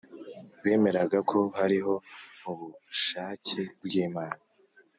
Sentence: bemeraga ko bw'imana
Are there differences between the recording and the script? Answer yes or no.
yes